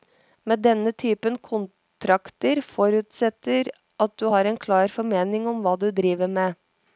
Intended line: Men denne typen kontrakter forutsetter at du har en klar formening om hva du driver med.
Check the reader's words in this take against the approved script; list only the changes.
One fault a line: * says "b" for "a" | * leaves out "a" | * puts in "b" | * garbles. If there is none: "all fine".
all fine